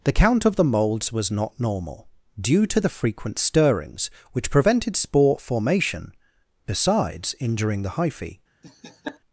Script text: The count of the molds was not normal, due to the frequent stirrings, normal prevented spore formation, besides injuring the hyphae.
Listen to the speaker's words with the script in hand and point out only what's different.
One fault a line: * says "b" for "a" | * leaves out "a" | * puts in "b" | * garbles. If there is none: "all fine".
* says "which" for "normal"